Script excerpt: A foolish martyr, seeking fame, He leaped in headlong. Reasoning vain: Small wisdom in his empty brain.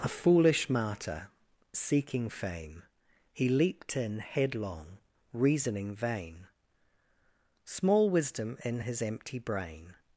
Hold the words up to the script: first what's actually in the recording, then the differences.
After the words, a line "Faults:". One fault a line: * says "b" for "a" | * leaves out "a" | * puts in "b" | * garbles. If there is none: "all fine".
A foolish martyr, seeking fame, He leaped in headlong. Reasoning vain: Small wisdom in his empty brain.
Faults:
all fine